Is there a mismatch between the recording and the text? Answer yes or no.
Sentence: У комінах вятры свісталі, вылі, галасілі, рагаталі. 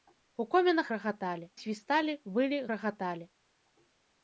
yes